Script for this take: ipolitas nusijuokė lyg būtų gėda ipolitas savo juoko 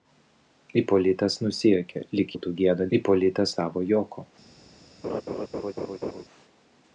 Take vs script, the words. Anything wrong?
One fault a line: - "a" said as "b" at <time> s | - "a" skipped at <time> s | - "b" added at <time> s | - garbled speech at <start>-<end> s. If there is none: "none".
none